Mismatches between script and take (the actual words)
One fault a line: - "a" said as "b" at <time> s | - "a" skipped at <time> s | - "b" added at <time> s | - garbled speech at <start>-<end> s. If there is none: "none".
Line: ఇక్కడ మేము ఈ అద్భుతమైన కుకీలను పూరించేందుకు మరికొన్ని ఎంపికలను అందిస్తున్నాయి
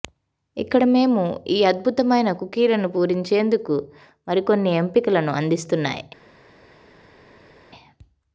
none